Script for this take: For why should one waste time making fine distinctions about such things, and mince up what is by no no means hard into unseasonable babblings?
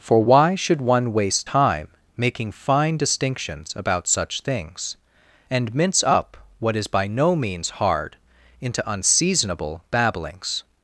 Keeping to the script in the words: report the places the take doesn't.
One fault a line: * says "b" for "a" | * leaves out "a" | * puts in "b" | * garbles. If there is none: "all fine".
* leaves out "no"